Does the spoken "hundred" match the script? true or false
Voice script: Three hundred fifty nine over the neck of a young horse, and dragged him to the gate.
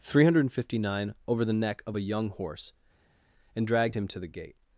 true